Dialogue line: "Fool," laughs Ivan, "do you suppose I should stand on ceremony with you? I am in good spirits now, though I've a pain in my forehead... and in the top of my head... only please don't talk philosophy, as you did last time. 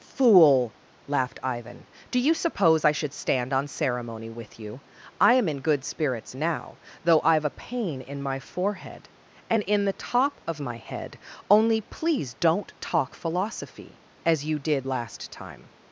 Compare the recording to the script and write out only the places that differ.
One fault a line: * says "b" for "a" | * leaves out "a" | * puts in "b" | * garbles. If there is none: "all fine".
* says "laughed" for "laughs"